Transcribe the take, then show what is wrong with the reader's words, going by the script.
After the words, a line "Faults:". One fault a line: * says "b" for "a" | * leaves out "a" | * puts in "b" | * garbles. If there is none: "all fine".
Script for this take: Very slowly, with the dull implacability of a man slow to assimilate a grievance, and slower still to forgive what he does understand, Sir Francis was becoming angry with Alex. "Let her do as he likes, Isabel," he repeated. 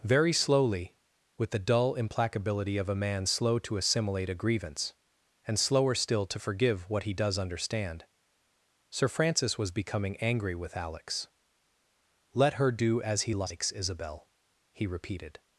Very slowly, with the dull implacability of a man slow to assimilate a grievance, and slower still to forgive what he does understand, Sir Francis was becoming angry with Alex. "Let her do as he likes, Isabel," he repeated.
Faults:
all fine